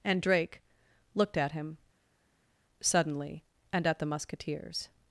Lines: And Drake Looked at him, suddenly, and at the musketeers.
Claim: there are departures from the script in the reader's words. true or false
false